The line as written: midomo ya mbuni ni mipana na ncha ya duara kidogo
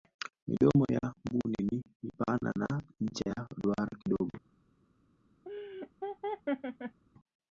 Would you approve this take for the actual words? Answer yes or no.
yes